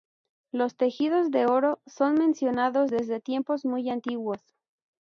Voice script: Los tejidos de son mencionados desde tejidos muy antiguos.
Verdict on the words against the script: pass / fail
fail